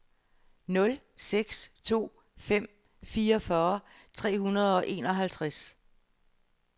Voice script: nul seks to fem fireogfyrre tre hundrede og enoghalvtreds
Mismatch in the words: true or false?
false